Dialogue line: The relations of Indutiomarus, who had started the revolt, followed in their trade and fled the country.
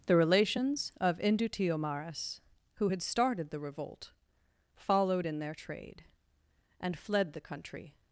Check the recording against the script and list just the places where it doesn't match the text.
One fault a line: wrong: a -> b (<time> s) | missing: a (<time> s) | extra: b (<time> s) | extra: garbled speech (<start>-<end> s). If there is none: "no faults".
no faults